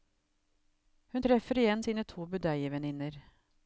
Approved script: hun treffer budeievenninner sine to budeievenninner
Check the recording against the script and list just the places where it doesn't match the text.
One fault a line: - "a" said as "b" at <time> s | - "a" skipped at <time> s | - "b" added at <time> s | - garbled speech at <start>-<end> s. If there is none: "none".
- "budeievenninner" said as "igjen" at 1.6 s